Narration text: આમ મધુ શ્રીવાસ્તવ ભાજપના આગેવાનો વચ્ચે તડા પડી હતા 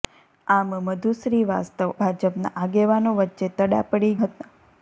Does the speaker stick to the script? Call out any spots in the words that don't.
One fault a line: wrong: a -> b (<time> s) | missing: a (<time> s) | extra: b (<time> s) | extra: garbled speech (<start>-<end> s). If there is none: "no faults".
no faults